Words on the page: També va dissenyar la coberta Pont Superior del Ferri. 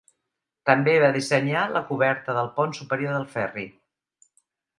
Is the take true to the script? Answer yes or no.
no